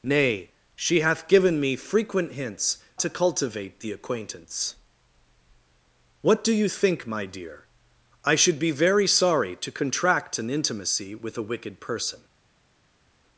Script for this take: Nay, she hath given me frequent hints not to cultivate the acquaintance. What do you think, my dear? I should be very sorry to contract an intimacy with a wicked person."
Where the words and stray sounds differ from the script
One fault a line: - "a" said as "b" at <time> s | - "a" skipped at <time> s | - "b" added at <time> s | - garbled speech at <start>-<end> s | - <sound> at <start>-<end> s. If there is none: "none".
- "not" skipped at 2.8 s